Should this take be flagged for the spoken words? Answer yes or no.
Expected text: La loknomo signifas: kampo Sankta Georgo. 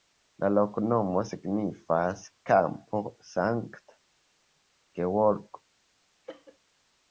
no